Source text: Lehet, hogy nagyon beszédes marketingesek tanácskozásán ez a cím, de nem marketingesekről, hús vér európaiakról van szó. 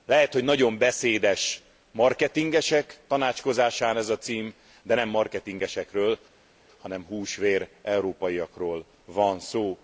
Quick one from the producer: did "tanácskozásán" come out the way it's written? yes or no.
yes